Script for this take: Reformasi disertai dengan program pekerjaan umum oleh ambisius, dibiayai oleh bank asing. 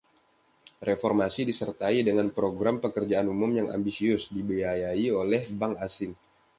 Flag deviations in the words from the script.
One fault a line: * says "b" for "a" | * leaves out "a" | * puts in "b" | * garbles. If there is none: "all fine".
* says "yang" for "oleh"